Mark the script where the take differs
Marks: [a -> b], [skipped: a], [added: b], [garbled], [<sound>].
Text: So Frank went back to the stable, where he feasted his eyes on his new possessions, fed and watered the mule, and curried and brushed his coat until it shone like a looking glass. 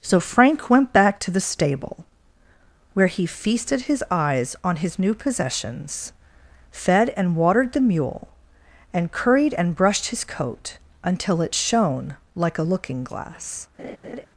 So Frank went back to the stable, where he feasted his eyes on his new possessions, fed and watered the mule, and curried and brushed his coat until it shone like a looking glass. [laugh]